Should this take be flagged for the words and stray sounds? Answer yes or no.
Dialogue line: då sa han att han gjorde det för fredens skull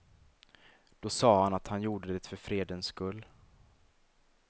no